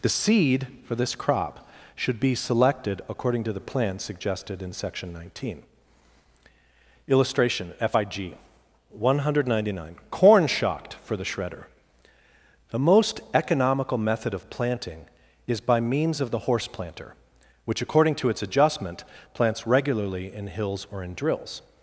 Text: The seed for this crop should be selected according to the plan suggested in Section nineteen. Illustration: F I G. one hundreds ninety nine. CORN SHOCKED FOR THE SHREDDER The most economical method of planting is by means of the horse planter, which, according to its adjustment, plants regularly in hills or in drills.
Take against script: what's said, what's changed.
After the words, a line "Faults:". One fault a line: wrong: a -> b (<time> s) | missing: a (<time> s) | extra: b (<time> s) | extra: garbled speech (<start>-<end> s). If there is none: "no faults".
The seed for this crop should be selected according to the plan suggested in Section nineteen. Illustration: F I G. one hundred ninety nine. CORN SHOCKED FOR THE SHREDDER The most economical method of planting is by means of the horse planter, which, according to its adjustment, plants regularly in hills or in drills.
Faults:
wrong: hundreds -> hundred (9.2 s)